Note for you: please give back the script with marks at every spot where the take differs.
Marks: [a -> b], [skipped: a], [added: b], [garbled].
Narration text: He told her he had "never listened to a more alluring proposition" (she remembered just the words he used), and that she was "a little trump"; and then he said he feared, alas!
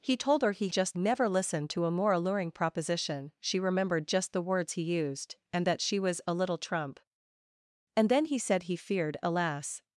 He told her he [had -> just] "never listened to a more alluring proposition" (she remembered just the words he used), and that she was "a little trump"; and then he said he feared, alas!